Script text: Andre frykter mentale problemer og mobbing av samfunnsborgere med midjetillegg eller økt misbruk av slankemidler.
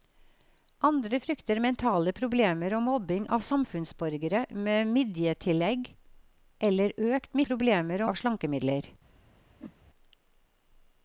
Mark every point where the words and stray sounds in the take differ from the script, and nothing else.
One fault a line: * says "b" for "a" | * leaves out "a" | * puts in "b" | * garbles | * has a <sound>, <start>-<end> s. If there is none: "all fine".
* says "problemer" for "misbruk"
* has a whoosh, 9.6-9.7 s